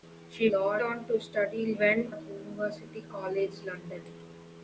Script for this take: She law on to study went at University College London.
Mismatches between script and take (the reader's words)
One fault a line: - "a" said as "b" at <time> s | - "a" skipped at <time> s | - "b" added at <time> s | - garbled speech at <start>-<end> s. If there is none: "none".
none